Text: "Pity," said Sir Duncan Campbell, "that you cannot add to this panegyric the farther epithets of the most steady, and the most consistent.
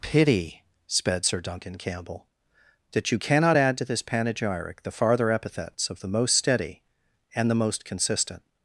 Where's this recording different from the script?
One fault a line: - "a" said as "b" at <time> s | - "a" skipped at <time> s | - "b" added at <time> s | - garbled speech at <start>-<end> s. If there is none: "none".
- "said" said as "sped" at 0.9 s